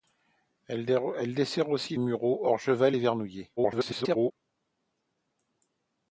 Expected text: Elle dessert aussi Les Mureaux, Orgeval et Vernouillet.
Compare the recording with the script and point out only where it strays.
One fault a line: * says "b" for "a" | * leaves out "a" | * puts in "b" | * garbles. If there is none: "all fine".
* leaves out "Les"
* garbles